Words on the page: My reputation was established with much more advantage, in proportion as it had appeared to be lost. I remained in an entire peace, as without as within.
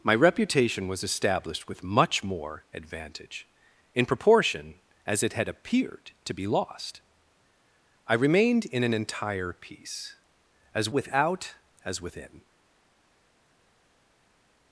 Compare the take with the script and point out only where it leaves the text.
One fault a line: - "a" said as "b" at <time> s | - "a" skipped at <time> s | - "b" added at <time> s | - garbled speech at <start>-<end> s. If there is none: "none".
none